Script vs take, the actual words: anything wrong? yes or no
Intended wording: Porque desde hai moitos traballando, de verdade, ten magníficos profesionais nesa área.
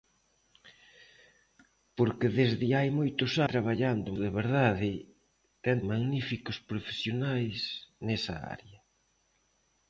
no